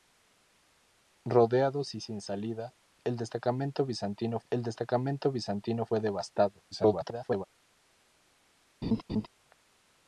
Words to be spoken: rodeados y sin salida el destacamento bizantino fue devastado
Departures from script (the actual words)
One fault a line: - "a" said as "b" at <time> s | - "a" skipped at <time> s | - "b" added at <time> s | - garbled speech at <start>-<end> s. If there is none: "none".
- "el destacamento bizantino" added at 4.5 s
- garbled speech at 6.7-7.5 s